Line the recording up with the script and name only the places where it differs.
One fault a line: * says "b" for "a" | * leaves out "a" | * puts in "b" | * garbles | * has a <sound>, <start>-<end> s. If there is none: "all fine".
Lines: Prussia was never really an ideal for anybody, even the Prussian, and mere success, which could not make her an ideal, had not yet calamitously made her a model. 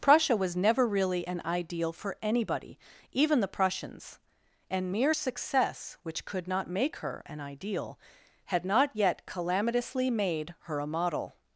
* says "Prussians" for "Prussian"